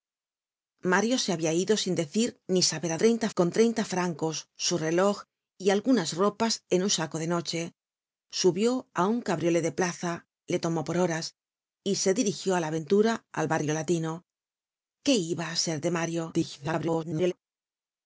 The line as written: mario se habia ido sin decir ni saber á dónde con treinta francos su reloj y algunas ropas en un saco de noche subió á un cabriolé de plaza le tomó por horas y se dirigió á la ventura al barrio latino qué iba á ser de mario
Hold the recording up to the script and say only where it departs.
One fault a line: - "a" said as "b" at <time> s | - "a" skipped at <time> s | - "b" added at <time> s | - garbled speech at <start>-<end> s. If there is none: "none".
- "dónde" said as "treinta" at 3.0 s
- garbled speech at 16.3-17.3 s